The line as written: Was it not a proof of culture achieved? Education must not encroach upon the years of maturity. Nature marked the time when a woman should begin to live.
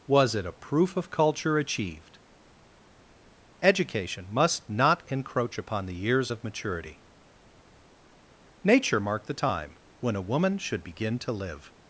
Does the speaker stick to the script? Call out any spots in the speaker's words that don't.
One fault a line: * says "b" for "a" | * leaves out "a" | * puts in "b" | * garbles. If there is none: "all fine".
* leaves out "not"